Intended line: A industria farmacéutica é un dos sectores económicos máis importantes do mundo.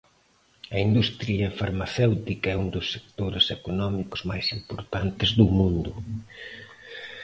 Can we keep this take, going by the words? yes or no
yes